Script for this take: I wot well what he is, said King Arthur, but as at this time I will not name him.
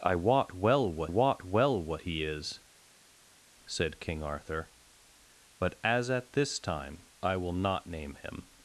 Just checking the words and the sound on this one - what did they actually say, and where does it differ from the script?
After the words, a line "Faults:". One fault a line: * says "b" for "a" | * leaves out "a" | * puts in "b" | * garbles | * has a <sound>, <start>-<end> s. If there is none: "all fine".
I wot well what wot well what he is, said King Arthur, but as at this time I will not name him.
Faults:
* puts in "wot well what"